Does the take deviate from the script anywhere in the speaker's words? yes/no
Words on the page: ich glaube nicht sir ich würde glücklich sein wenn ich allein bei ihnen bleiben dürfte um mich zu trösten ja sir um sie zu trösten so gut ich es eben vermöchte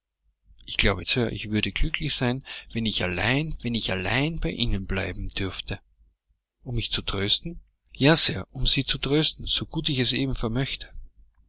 yes